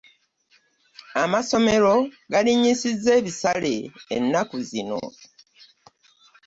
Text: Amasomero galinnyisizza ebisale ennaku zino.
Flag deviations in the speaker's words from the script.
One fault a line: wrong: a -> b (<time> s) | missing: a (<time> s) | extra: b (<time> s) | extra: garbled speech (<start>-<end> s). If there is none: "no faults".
no faults